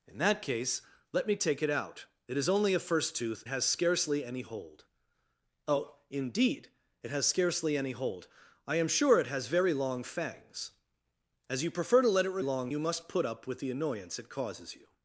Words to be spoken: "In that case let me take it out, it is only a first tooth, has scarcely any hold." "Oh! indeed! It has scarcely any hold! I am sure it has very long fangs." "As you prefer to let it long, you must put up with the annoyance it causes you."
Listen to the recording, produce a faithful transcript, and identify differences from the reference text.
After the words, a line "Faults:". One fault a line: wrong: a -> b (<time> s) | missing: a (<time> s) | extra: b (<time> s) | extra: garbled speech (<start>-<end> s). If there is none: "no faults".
"In that case let me take it out, it is only a first tooth, has scarcely any hold." "Oh! indeed! It has scarcely any hold! I am sure it has very long fangs." "As you prefer to let it long, you must put up with the annoyance it causes you."
Faults:
no faults